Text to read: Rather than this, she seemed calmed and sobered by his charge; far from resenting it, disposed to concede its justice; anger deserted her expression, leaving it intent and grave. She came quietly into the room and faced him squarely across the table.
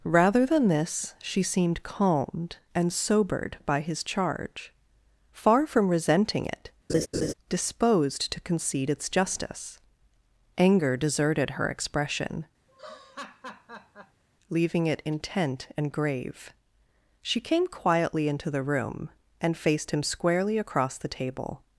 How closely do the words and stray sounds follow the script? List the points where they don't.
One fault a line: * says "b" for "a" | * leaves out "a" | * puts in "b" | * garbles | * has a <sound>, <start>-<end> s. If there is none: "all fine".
* has a laugh, 6.9-7.3 s
* has a laugh, 12.7-14.2 s